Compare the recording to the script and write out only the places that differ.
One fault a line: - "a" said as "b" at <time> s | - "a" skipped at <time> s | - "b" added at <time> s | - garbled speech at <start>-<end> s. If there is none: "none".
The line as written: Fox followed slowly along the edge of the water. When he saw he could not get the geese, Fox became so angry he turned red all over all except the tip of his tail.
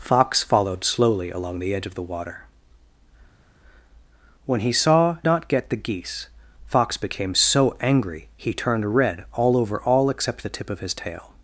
- "he could" skipped at 5.2 s